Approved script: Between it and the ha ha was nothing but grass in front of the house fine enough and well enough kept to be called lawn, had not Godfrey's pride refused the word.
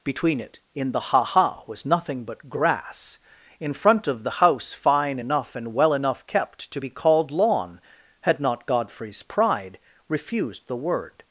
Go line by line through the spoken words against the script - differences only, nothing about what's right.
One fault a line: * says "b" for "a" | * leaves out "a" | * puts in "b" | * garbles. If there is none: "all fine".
* says "in" for "and"